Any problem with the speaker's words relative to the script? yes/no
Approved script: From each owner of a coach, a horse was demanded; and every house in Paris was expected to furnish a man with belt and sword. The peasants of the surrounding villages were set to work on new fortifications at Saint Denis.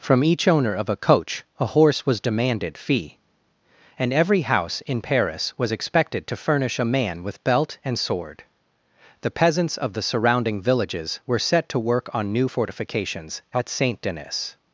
yes